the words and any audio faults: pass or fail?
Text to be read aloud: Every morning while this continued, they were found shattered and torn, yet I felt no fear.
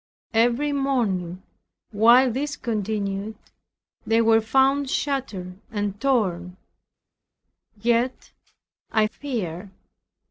fail